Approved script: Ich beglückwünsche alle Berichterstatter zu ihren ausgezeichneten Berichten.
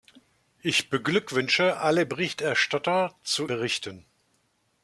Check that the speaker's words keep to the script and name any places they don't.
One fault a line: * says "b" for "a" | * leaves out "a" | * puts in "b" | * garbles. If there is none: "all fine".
* leaves out "ihren ausgezeichneten"